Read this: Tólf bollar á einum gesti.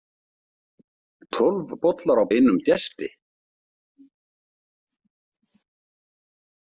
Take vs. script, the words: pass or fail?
pass